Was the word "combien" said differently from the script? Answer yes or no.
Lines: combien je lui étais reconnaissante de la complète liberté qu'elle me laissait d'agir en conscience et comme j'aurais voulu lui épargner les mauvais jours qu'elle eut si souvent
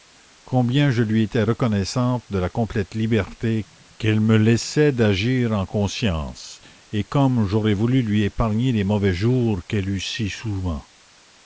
no